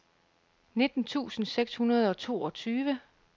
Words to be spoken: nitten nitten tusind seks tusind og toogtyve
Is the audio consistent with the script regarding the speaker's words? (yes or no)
no